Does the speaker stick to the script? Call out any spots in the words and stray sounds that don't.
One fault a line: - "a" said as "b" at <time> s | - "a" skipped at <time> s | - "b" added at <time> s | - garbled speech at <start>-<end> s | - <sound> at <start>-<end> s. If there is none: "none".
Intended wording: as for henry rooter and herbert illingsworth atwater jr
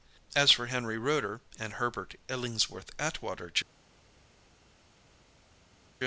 none